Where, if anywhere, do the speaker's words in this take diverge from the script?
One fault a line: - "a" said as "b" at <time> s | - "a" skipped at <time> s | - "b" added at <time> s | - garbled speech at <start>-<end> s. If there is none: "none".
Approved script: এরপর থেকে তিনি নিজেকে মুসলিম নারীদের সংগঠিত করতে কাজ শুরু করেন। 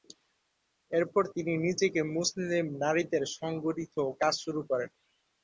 - "থেকে" skipped at 1.2 s
- "করতে" skipped at 3.9 s